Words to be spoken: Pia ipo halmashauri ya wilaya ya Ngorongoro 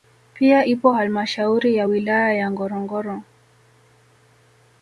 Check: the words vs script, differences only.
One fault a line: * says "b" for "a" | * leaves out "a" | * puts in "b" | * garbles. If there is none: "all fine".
all fine